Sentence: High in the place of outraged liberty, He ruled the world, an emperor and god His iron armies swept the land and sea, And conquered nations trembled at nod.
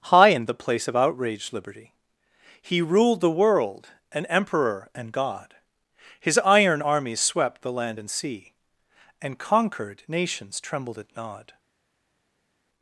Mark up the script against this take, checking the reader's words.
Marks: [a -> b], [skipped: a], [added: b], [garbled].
High in the place of outraged liberty, He ruled the world, an emperor and god His iron armies swept the land and sea, And conquered nations trembled at nod.